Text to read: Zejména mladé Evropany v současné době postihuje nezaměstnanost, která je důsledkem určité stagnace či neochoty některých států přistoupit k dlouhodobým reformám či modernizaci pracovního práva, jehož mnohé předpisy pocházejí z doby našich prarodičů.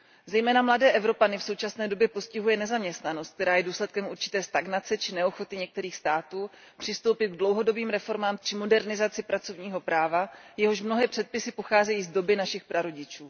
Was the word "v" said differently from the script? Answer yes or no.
no